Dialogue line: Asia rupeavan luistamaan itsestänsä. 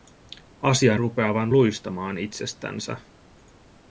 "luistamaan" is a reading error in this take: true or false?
false